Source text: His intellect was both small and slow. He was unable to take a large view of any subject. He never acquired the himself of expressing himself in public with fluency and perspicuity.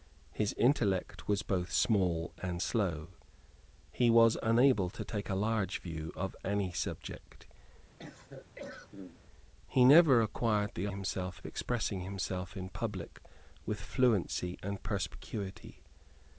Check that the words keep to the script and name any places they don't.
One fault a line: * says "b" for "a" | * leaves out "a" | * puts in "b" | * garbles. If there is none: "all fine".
all fine